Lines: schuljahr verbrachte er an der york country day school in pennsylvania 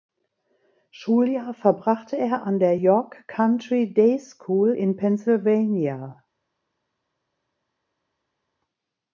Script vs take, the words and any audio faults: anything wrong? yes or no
no